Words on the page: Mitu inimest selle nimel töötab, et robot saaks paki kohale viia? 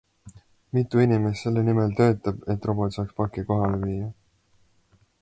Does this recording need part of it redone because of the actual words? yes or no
no